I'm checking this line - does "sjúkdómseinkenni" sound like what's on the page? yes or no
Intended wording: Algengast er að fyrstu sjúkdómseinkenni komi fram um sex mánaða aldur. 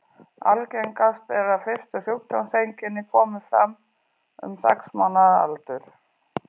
yes